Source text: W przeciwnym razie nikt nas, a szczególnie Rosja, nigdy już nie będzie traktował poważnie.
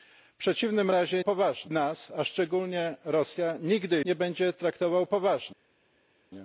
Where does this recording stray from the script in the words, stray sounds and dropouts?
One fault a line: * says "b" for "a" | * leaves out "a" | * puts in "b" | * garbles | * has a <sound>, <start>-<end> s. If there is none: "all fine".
* says "poważnie" for "nikt"
* leaves out "już"